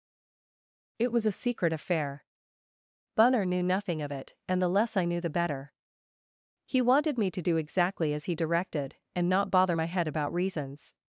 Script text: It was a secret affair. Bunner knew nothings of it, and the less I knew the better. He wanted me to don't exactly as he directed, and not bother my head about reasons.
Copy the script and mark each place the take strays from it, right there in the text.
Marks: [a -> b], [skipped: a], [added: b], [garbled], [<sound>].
It was a secret affair. Bunner knew [nothings -> nothing] of it, and the less I knew the better. He wanted me to [don't -> do] exactly as he directed, and not bother my head about reasons.